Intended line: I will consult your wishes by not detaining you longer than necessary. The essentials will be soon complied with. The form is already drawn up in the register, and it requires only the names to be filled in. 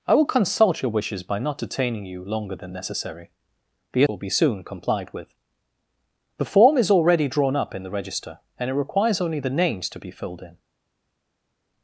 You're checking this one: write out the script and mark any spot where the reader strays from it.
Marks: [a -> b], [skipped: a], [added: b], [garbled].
I will consult your wishes by not detaining you longer than necessary. The [skipped: essentials] will be soon complied with. The form is already drawn up in the register, and it requires only the names to be filled in.